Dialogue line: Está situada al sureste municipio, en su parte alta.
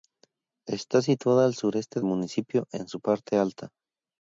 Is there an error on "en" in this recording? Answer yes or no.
no